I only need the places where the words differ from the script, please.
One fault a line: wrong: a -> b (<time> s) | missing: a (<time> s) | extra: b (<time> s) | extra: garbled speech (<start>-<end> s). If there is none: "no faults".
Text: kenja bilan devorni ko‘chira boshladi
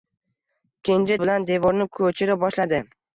no faults